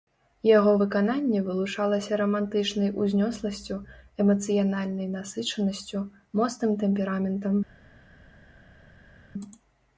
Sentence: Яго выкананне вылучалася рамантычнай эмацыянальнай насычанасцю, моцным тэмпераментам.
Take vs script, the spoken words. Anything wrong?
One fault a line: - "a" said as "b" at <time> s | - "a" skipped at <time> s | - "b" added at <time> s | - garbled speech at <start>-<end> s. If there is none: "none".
- "узнёсласцю" added at 3.0 s